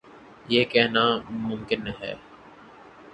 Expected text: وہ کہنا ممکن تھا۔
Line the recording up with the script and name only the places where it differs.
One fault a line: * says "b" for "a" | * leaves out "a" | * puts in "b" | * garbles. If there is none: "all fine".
* says "یہ" for "وہ"
* says "ہے" for "تھا"